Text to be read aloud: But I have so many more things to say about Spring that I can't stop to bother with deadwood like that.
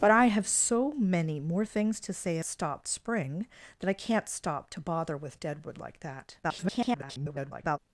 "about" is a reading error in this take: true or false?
true